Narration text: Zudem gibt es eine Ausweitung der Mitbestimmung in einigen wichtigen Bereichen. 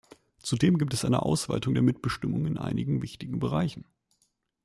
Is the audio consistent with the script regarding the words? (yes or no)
yes